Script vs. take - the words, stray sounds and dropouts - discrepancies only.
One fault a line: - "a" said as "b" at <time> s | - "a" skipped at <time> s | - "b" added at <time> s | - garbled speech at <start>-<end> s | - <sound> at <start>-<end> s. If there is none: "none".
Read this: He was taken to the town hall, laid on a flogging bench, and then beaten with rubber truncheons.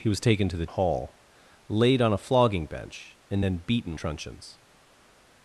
- "town" skipped at 0.7 s
- "with rubber" skipped at 4.0 s